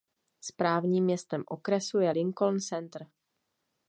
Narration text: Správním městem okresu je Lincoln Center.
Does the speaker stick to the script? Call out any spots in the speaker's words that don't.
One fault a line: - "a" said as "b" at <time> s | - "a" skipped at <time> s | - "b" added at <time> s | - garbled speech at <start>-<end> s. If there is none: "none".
none